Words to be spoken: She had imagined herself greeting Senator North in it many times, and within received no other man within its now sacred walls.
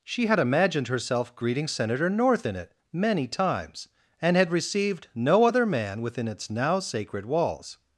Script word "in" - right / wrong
right